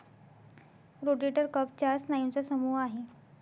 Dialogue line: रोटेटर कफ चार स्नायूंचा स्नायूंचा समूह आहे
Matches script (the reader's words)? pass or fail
fail